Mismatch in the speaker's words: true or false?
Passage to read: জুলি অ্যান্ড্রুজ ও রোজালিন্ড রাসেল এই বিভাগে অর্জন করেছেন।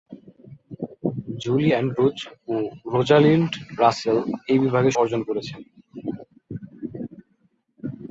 false